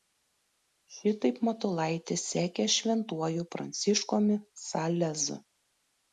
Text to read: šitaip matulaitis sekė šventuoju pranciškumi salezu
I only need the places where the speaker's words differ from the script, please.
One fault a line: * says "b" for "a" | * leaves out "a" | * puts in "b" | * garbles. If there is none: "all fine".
all fine